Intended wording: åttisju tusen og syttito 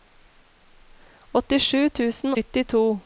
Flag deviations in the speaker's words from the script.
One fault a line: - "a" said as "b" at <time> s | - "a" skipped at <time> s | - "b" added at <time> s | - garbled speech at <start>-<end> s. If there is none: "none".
- "og" skipped at 2.3 s